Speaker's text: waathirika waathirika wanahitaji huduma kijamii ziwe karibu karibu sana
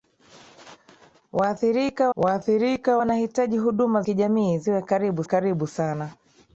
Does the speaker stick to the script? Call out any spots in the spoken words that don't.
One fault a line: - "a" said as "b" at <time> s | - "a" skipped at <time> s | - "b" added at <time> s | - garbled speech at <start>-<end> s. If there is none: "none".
none